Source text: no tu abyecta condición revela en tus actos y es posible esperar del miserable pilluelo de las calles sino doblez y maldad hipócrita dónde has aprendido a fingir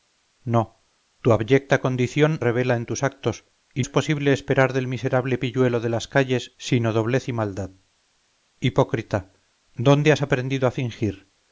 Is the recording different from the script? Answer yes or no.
no